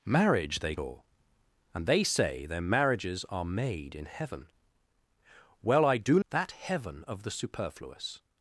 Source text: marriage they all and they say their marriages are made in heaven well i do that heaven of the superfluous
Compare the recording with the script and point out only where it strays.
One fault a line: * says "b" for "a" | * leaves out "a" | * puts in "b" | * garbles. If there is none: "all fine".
all fine